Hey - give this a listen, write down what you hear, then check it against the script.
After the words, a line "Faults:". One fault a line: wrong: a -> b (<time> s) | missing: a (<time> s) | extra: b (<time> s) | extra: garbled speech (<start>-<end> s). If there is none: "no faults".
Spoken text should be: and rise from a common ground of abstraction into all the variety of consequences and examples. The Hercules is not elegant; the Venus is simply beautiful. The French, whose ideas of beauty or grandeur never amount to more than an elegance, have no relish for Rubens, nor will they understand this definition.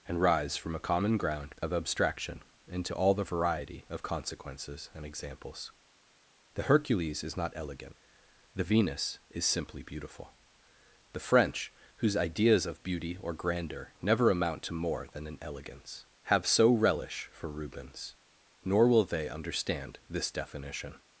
and rise from a common ground of abstraction into all the variety of consequences and examples. The Hercules is not elegant; the Venus is simply beautiful. The French, whose ideas of beauty or grandeur never amount to more than an elegance, have so relish for Rubens, nor will they understand this definition.
Faults:
wrong: no -> so (16.5 s)